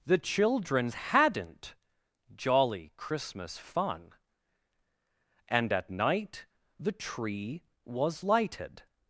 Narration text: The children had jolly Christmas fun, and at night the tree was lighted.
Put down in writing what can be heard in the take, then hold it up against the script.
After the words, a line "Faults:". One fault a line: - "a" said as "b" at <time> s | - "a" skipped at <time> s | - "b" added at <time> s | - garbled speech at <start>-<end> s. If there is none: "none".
The children hadn't jolly Christmas fun, and at night the tree was lighted.
Faults:
- "had" said as "hadn't" at 0.9 s